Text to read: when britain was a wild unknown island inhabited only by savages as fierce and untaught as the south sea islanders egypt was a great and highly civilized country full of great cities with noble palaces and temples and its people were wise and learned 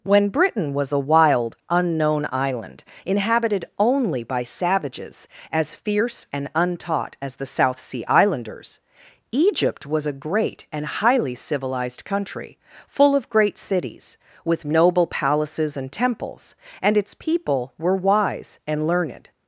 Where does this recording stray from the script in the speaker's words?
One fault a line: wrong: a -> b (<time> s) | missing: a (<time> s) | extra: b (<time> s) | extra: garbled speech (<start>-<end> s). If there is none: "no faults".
no faults